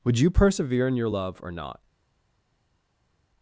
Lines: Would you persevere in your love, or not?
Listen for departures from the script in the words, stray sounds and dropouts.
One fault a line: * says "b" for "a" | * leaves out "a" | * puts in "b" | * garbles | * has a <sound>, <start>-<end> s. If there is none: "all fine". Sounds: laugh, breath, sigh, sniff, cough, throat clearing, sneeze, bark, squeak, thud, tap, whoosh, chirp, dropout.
all fine